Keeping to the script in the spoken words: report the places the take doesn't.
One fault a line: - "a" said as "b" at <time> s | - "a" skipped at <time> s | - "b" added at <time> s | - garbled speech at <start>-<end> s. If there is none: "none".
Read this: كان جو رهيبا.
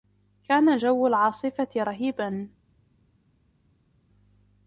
- "العاصفة" added at 1.1 s